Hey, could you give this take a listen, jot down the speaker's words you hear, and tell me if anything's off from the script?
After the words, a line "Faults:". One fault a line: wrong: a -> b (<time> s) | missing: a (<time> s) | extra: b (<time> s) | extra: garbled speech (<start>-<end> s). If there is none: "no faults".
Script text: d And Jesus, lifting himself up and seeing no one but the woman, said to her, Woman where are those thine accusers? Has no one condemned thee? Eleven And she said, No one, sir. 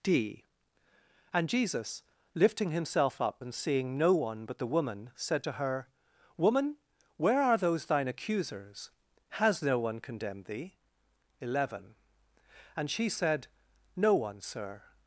d And Jesus, lifting himself up and seeing no one but the woman, said to her, Woman where are those thine accusers? Has no one condemned thee? Eleven And she said, No one, sir.
Faults:
no faults